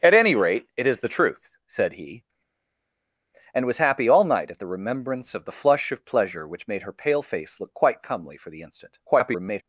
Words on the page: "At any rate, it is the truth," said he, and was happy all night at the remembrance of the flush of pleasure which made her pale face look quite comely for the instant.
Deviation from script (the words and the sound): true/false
true